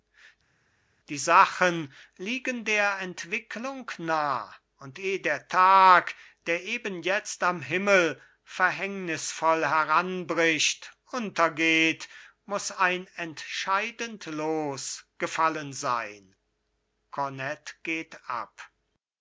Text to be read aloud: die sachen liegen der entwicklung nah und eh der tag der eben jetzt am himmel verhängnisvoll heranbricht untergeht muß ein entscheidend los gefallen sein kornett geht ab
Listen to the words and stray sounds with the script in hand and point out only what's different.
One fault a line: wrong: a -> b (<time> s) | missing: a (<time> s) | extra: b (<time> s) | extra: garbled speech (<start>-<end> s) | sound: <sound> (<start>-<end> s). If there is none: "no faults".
no faults